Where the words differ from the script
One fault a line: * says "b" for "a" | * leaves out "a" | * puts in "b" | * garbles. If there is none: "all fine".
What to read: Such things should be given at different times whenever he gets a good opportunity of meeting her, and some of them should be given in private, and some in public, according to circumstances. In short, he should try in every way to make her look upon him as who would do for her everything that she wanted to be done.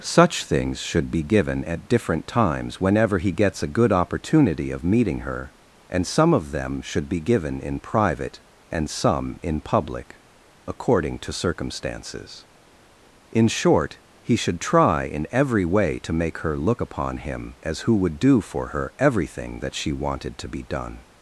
all fine